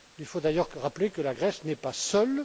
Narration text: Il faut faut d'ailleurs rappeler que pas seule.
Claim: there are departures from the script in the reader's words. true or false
true